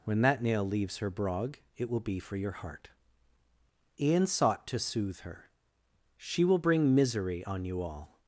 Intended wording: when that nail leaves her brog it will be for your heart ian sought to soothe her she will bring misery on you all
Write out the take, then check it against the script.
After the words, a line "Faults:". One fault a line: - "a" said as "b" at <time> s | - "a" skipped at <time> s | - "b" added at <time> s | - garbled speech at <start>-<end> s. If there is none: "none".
when that nail leaves her brog it will be for your heart ian sought to soothe her she will bring misery on you all
Faults:
none